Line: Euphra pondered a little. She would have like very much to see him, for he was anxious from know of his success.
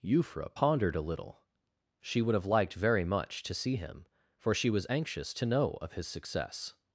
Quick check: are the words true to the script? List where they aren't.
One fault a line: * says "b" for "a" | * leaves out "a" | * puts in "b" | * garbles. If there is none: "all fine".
* says "liked" for "like"
* says "she" for "he"
* says "to" for "from"